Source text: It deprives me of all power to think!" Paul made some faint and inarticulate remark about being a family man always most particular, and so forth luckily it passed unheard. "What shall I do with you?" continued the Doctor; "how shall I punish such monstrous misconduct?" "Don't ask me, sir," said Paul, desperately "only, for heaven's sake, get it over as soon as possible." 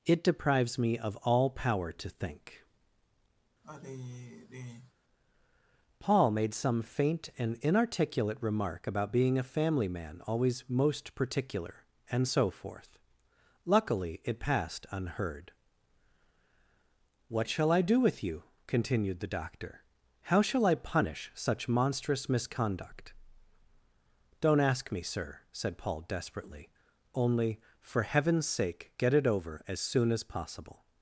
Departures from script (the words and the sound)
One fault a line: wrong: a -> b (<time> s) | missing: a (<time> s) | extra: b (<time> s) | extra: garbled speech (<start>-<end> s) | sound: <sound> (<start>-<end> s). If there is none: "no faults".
sound: sigh (3.6-4.9 s)